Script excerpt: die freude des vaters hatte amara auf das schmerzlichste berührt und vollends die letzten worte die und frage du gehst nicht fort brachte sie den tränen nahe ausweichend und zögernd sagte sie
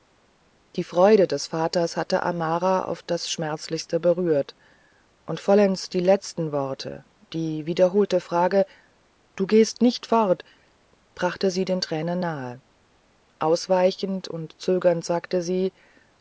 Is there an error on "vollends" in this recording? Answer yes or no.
no